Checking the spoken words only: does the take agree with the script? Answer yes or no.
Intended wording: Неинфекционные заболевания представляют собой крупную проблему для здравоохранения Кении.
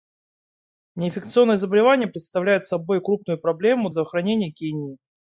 no